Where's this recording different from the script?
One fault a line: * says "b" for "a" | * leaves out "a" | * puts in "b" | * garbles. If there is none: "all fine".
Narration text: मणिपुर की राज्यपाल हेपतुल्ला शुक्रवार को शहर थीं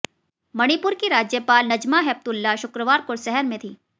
* puts in "नजमा"
* puts in "में"